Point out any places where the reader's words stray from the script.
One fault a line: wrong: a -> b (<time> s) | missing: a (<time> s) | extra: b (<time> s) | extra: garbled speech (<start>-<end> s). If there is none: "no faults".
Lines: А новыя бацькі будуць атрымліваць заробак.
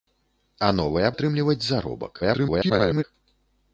missing: бацькі будуць (1.1 s)
extra: garbled speech (2.2-3.0 s)